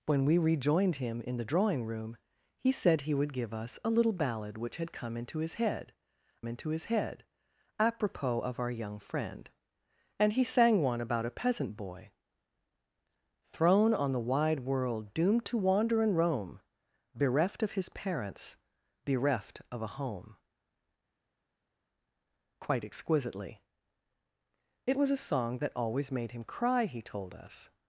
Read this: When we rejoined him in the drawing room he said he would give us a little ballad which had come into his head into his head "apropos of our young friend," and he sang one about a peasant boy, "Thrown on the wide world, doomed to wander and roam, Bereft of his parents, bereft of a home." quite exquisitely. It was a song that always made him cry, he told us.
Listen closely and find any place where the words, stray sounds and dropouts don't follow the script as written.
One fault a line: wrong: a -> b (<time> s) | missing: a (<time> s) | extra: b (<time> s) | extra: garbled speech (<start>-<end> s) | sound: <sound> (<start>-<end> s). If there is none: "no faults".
no faults